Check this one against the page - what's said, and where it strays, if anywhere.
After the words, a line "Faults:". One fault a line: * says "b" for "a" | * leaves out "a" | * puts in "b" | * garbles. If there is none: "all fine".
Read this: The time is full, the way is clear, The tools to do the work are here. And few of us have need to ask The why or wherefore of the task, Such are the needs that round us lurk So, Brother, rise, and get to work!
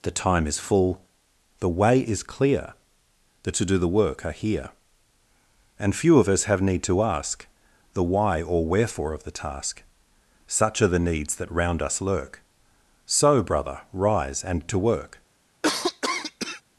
The time is full, the way is clear, The to do the work are here. And few of us have need to ask The why or wherefore of the task, Such are the needs that round us lurk So, Brother, rise, and to work!
Faults:
* leaves out "tools"
* leaves out "get"